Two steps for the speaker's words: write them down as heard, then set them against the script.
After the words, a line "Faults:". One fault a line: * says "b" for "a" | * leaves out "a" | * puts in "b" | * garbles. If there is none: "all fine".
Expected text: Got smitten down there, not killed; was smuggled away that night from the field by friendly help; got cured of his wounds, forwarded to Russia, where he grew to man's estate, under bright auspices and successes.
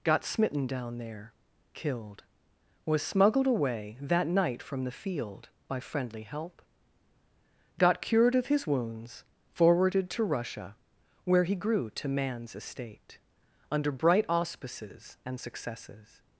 Got smitten down there, killed; was smuggled away that night from the field by friendly help; got cured of his wounds, forwarded to Russia, where he grew to man's estate, under bright auspices and successes.
Faults:
* leaves out "not"